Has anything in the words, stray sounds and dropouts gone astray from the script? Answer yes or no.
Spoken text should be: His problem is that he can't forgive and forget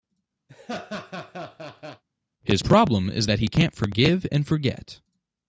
yes